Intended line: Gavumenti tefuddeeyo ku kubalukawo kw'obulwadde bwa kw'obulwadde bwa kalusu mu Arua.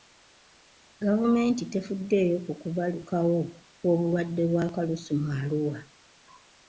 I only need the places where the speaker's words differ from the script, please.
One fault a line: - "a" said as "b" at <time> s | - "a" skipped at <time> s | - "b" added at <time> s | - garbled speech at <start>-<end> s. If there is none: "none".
- "kw'obulwadde bwa" skipped at 4.7 s